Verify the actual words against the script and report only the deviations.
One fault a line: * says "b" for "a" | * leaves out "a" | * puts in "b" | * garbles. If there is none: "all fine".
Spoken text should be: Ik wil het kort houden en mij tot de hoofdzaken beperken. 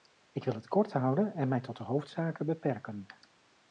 all fine